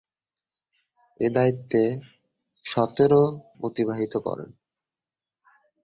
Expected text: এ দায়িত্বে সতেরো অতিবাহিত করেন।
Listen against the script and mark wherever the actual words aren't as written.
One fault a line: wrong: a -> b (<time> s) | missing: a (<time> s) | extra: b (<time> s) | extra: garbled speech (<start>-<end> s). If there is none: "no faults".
no faults